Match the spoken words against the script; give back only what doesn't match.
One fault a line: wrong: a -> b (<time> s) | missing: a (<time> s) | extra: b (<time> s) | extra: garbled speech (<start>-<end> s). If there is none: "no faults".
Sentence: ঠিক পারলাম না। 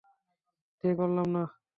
no faults